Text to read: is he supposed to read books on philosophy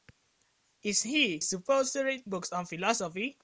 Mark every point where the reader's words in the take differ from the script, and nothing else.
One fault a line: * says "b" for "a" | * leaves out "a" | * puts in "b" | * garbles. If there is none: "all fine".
all fine